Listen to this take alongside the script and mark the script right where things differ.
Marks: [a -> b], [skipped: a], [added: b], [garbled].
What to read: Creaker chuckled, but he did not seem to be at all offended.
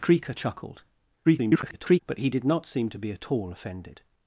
Creaker chuckled, [garbled] but he did not seem to be at all offended.